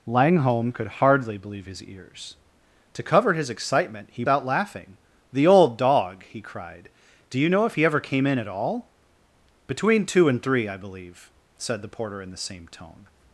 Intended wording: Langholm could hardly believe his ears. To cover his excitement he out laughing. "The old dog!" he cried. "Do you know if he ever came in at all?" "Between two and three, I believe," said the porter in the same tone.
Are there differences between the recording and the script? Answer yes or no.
no